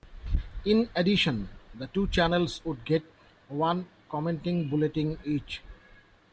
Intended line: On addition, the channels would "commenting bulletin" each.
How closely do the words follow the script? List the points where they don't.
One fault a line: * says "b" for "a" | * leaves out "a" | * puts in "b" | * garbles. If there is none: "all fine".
* says "In" for "On"
* puts in "two"
* puts in "get one"